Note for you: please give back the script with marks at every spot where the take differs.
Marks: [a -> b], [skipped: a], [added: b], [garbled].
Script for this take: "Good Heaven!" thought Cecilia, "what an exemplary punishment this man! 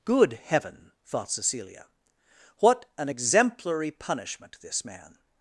"Good Heaven!" thought Cecilia, "what an exemplary punishment this man!